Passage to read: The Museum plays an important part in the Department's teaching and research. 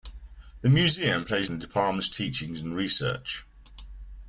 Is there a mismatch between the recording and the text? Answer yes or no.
yes